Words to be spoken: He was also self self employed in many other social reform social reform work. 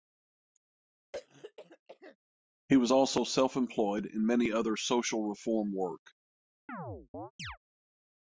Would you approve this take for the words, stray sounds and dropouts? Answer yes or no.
no